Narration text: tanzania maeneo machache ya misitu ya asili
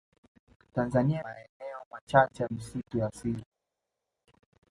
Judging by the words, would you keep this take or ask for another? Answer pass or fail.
pass